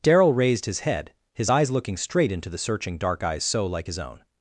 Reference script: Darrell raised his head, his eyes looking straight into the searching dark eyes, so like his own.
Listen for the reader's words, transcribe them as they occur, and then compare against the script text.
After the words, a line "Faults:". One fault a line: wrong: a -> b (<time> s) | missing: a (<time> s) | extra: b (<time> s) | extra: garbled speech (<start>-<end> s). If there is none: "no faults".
Darrell raised his head, his eyes looking straight into the searching dark eyes, so like his own.
Faults:
no faults